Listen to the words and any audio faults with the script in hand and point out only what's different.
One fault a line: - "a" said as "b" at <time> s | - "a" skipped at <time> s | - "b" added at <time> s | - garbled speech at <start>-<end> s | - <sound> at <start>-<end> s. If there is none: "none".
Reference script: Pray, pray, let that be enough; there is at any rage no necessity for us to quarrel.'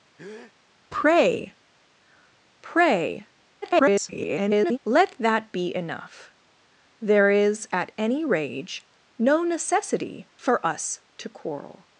- breath at 0.2-0.5 s
- garbled speech at 3.6-4.8 s